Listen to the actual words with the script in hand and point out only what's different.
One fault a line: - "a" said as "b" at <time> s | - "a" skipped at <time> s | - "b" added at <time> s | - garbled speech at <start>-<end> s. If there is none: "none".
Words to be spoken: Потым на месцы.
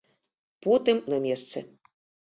none